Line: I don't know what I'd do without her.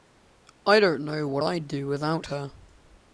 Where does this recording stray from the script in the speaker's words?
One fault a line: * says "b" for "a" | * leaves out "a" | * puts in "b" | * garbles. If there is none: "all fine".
all fine